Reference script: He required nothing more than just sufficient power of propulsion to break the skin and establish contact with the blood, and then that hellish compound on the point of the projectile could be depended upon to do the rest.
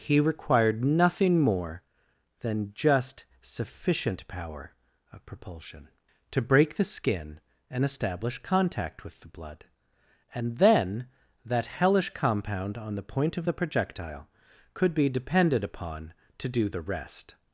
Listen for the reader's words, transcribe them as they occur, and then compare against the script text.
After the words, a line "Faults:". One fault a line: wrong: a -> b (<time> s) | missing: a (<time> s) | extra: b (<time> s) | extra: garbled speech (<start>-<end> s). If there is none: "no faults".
He required nothing more than just sufficient power of propulsion to break the skin and establish contact with the blood, and then that hellish compound on the point of the projectile could be depended upon to do the rest.
Faults:
no faults